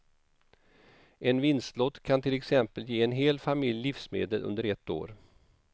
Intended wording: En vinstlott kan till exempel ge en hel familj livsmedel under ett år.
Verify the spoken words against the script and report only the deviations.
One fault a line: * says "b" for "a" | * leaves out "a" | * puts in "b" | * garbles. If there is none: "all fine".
all fine